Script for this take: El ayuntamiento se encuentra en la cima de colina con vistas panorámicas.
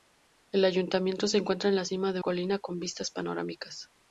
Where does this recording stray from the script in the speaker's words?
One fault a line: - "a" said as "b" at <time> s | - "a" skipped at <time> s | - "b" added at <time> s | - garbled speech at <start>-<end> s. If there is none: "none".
none